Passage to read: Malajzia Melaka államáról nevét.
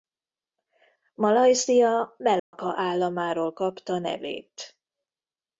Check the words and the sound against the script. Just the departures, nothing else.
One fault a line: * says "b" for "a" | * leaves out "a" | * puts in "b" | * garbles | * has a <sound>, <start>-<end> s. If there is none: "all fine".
* has a dropout, 2.4-2.5 s
* puts in "kapta"